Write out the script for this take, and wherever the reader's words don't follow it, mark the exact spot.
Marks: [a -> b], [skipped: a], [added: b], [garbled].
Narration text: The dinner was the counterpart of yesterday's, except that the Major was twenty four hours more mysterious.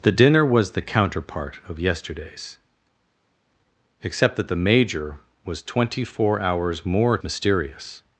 The dinner was the counterpart of yesterday's, except that the Major was twenty four hours more mysterious.